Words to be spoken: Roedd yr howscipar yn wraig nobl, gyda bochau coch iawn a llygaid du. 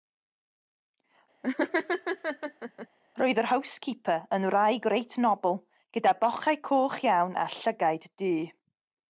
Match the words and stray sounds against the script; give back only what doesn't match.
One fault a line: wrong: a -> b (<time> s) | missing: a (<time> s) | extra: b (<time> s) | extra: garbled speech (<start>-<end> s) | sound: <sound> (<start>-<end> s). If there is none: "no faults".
sound: laugh (1.4-2.9 s)
extra: reit (5.0 s)